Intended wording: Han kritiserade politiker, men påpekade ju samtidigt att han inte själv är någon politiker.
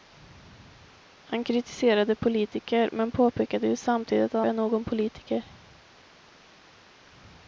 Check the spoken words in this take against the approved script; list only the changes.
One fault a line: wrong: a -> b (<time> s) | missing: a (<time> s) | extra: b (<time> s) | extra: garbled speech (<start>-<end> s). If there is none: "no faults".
missing: han inte själv (4.4 s)